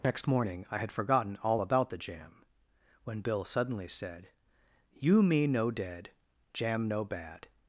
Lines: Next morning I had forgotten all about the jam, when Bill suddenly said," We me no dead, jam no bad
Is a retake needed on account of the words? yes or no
yes